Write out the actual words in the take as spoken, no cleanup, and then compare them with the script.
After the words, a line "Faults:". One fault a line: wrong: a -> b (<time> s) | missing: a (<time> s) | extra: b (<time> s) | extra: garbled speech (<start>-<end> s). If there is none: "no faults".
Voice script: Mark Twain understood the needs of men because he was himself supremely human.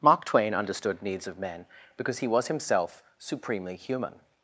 Mark Twain understood needs of men because he was himself supremely human.
Faults:
missing: the (1.0 s)